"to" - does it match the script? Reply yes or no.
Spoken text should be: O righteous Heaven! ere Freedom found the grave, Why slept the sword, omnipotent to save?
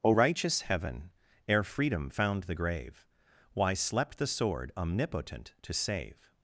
yes